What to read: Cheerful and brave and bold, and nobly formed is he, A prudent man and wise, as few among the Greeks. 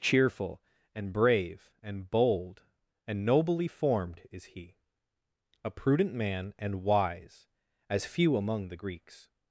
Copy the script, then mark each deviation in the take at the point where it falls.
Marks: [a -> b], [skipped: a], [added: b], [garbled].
Cheerful and brave and bold, and nobly formed is he, A prudent man and wise, as few among the Greeks.